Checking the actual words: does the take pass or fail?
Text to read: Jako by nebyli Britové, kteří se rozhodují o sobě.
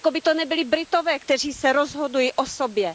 fail